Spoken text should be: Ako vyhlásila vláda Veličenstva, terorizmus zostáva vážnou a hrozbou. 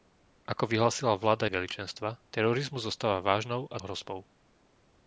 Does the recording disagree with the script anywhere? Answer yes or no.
no